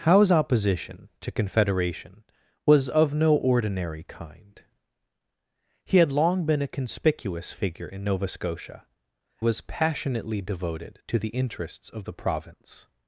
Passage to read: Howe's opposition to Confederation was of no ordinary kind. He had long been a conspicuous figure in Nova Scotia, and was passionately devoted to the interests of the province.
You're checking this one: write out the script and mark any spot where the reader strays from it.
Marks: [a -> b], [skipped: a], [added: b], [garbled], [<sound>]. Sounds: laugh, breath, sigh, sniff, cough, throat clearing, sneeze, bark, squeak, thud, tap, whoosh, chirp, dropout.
Howe's opposition to Confederation was of no ordinary kind. He had long been a conspicuous figure in Nova Scotia, [skipped: and] was passionately devoted to the interests of the province.